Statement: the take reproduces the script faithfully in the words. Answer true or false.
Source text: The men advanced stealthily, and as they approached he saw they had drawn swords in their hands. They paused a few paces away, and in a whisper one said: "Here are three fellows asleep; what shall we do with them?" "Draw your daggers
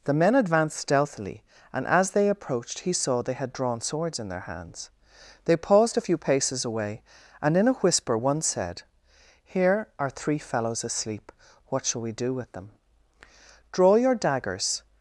true